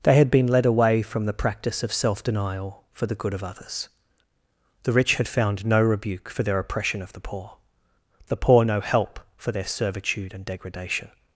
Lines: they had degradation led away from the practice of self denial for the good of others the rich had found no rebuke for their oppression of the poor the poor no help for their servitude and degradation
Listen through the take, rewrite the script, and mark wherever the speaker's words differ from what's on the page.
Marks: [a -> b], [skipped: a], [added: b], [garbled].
they had [degradation -> been] led away from the practice of self denial for the good of others the rich had found no rebuke for their oppression of the poor the poor no help for their servitude and degradation